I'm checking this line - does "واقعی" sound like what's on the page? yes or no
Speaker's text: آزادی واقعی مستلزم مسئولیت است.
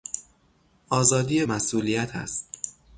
no